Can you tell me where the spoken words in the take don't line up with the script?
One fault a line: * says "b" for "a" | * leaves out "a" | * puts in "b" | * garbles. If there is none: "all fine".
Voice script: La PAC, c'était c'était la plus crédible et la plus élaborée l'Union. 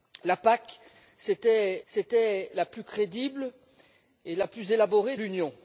all fine